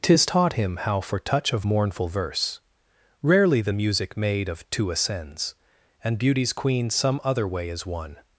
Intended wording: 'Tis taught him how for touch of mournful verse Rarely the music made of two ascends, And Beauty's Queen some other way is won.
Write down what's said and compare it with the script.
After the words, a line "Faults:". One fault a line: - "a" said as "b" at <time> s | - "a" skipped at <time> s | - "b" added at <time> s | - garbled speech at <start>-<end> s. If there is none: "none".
'Tis taught him how for touch of mournful verse Rarely the music made of two ascends, And Beauty's Queen some other way is won.
Faults:
none